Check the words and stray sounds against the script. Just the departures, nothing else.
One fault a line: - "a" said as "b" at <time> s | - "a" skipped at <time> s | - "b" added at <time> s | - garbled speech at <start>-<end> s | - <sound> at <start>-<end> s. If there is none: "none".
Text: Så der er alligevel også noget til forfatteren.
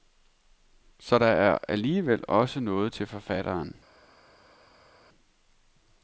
none